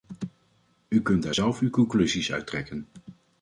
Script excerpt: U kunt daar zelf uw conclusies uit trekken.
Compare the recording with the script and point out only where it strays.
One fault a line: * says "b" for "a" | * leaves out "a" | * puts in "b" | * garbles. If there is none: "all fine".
all fine